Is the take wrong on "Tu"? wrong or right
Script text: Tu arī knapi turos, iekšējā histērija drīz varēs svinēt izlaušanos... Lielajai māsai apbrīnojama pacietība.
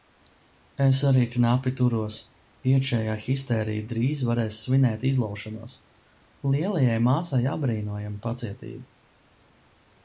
wrong